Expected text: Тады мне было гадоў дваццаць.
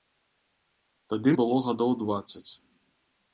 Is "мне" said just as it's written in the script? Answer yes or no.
no